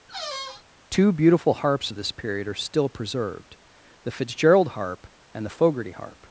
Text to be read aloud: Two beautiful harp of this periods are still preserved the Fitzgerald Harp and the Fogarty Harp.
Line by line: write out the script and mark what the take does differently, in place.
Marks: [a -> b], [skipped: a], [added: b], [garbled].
Two beautiful [harp -> harps] of this [periods -> period] are still preserved the Fitzgerald Harp and the Fogarty Harp.